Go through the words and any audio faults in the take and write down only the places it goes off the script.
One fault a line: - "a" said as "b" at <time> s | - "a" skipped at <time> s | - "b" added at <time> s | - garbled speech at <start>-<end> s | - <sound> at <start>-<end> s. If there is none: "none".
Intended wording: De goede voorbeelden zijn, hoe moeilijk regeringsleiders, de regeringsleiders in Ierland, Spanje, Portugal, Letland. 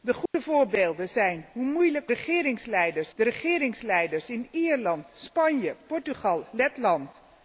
- dropout at 0.3-0.3 s